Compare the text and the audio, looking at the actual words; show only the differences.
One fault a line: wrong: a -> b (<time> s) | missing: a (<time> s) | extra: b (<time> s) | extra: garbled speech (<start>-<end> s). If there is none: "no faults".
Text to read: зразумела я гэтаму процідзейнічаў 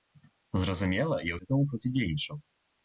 no faults